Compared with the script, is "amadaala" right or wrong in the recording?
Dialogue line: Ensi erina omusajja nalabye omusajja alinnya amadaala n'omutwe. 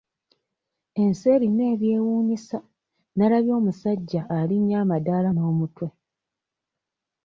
right